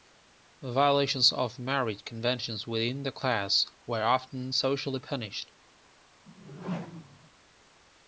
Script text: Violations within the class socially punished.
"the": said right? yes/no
yes